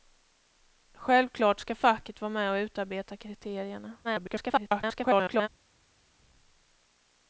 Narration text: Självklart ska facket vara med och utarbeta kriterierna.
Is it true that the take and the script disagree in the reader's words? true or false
true